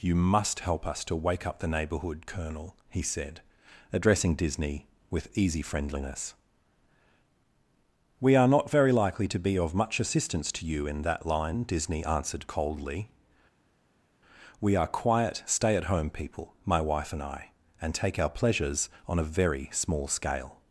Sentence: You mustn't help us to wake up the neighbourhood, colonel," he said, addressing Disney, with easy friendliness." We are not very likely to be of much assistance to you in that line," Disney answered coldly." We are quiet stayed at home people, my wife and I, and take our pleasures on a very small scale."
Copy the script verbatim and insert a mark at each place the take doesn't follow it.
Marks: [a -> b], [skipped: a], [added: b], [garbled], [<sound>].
You [mustn't -> must] help us to wake up the neighbourhood, colonel," he said, addressing Disney, with easy friendliness." We are not very likely to be of much assistance to you in that line," Disney answered coldly." We are quiet [stayed -> stay] at home people, my wife and I, and take our pleasures on a very small scale."